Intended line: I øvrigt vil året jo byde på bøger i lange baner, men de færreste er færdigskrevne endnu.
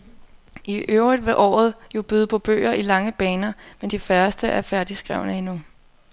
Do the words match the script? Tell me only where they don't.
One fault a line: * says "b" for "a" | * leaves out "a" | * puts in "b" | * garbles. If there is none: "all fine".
all fine